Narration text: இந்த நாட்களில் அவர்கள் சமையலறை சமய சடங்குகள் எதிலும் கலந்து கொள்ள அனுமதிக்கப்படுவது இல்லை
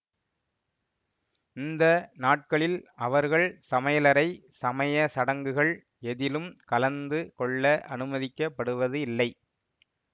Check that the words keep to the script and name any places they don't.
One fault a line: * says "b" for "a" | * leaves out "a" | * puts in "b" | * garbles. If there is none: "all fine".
all fine